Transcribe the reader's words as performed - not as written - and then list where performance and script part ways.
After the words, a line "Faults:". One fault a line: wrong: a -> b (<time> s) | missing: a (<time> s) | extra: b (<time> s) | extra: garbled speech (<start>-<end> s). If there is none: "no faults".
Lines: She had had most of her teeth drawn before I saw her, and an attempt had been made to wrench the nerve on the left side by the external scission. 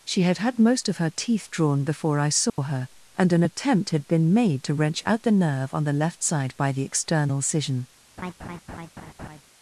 She had had most of her teeth drawn before I saw her, and an attempt had been made to wrench out the nerve on the left side by the external scission.
Faults:
extra: out (5.1 s)